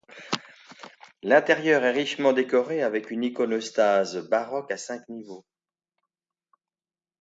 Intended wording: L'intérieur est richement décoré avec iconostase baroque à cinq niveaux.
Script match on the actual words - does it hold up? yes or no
no